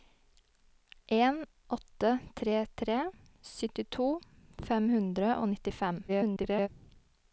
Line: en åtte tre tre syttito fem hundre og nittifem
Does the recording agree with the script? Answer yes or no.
no